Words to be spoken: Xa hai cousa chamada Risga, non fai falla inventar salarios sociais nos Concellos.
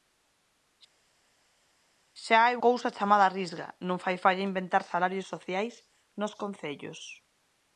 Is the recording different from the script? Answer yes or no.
no